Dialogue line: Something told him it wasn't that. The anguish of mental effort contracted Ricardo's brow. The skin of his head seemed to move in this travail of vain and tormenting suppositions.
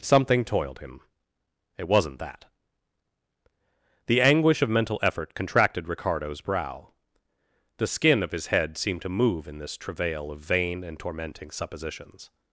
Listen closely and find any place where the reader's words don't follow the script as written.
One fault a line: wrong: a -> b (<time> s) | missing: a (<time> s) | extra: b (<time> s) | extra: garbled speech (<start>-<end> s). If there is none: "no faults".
wrong: told -> toiled (0.4 s)